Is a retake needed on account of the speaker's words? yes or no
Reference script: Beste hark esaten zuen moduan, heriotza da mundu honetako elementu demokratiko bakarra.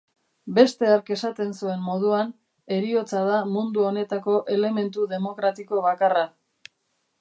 no